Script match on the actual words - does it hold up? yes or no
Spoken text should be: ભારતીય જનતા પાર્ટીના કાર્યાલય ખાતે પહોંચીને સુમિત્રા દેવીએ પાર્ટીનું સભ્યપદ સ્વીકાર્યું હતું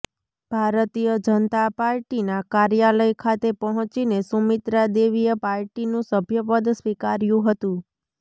yes